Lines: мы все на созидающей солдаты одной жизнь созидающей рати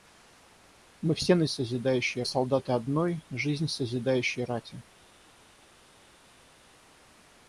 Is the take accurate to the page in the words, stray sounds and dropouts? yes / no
yes